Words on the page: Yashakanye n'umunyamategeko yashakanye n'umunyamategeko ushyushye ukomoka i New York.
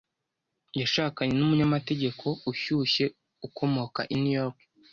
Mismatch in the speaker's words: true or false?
true